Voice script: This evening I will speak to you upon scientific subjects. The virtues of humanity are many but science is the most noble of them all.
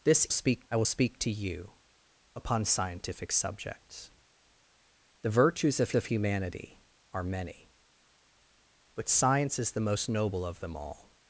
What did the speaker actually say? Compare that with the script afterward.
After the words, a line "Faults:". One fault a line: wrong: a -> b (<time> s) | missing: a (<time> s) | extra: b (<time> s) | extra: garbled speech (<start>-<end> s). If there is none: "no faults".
This speak I will speak to you upon scientific subjects. The virtues of of humanity are many but science is the most noble of them all.
Faults:
wrong: evening -> speak (0.3 s)
extra: of (6.0 s)